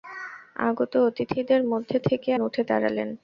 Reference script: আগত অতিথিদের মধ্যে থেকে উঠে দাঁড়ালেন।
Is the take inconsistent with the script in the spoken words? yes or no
no